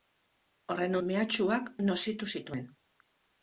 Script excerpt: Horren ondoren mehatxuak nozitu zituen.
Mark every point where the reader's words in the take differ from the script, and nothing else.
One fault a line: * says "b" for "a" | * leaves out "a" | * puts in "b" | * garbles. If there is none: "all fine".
* leaves out "ondoren"